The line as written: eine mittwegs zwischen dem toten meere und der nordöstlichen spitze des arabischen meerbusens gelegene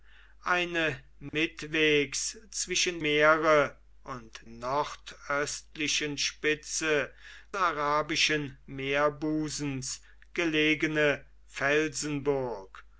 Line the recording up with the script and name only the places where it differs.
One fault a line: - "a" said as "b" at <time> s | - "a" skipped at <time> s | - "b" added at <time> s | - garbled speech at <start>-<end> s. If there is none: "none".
- "dem toten" skipped at 3.0 s
- "der" skipped at 4.4 s
- "des" skipped at 7.1 s